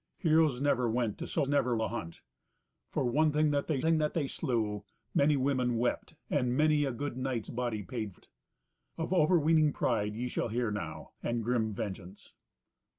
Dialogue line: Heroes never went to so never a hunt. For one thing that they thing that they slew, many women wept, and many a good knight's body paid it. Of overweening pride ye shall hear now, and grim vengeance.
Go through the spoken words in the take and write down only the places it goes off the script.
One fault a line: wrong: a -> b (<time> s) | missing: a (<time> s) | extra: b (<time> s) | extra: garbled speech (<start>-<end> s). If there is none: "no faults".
no faults